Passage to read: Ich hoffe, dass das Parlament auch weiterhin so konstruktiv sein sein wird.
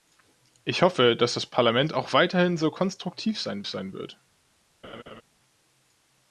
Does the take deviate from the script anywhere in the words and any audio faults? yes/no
yes